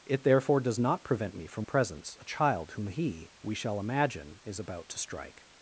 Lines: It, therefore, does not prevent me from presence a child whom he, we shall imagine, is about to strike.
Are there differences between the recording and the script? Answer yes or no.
no